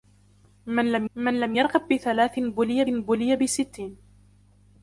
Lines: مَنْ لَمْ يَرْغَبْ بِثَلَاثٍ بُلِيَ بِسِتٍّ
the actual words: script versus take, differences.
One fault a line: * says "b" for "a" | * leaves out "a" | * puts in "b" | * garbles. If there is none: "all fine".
* puts in "مَنْ لَمْ"
* puts in "بُلِيَ"